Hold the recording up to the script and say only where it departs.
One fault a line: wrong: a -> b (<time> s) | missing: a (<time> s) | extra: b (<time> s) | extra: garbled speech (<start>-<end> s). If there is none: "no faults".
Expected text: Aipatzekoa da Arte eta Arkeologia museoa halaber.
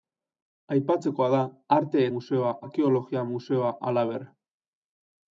wrong: eta -> museoa (2.2 s)